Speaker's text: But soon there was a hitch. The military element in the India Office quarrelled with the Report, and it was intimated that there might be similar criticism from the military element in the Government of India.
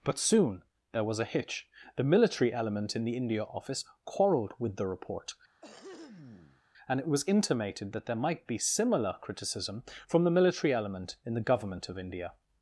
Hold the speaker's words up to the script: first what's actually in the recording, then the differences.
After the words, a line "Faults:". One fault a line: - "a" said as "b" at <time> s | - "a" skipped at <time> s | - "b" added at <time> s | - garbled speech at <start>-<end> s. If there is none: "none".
But soon there was a hitch. The military element in the India Office quarrelled with the Report, and it was intimated that there might be similar criticism from the military element in the Government of India.
Faults:
none